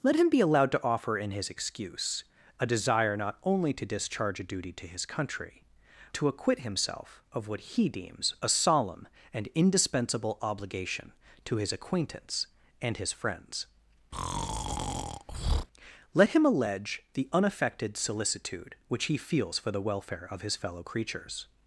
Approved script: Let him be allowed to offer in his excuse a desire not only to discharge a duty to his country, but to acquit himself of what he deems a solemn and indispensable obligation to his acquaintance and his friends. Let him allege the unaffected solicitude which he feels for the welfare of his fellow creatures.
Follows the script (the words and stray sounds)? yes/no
no